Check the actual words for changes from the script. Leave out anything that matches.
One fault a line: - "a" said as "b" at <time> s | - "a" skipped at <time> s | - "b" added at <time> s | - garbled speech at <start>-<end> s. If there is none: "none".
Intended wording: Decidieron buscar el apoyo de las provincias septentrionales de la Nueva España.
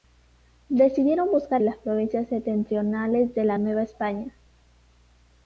- "el apoyo de" skipped at 1.6 s